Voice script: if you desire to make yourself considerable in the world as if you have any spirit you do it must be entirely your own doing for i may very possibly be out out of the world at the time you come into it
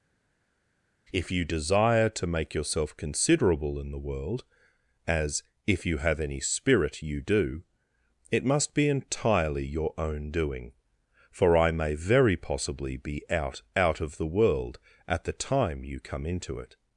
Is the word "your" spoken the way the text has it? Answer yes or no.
yes